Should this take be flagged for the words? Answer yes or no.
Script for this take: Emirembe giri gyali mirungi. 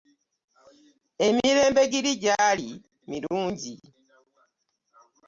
no